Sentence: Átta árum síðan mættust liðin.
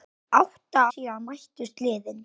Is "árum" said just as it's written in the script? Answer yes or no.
no